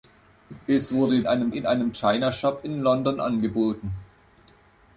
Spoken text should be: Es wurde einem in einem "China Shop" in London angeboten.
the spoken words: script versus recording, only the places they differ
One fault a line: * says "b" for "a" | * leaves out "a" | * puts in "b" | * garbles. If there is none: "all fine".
all fine